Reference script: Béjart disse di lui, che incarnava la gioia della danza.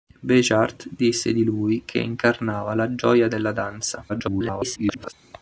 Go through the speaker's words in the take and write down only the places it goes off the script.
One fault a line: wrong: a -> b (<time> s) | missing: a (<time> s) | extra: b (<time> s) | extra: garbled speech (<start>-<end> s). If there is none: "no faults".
extra: garbled speech (4.1-5.1 s)